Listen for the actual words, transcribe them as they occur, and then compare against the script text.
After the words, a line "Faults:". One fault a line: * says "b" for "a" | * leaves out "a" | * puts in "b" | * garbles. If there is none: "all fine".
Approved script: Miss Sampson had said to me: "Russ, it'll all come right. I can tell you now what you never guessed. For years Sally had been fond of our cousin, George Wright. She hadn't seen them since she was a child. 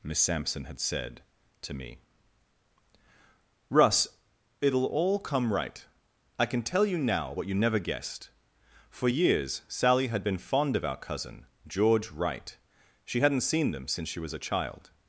Miss Sampson had said to me: "Russ, it'll all come right. I can tell you now what you never guessed. For years Sally had been fond of our cousin, George Wright. She hadn't seen them since she was a child.
Faults:
all fine